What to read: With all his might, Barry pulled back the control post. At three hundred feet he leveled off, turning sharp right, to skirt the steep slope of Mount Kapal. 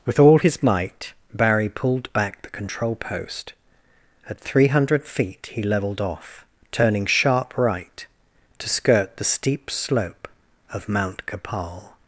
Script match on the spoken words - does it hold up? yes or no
yes